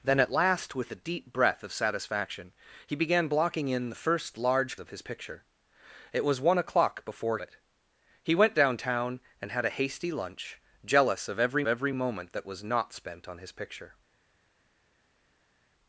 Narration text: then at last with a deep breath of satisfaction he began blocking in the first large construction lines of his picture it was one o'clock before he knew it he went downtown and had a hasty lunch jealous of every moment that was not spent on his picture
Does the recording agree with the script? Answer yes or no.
no